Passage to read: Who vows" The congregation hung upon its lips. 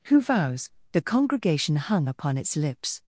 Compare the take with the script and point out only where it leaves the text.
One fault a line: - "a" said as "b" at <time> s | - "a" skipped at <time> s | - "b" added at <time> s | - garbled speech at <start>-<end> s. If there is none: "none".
none